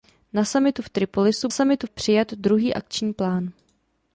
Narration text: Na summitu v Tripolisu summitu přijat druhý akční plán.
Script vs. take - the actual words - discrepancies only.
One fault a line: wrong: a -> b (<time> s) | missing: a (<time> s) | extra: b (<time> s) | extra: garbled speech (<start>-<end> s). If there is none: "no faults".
no faults